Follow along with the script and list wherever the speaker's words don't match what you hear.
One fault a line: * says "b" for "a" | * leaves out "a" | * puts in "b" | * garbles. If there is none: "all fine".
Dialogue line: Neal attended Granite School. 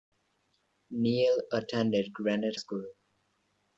all fine